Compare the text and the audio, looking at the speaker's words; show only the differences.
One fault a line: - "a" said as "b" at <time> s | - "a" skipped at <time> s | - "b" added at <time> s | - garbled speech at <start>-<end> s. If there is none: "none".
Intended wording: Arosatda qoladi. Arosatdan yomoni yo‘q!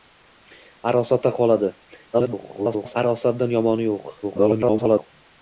- garbled speech at 2.1-3.0 s
- garbled speech at 4.2-5.1 s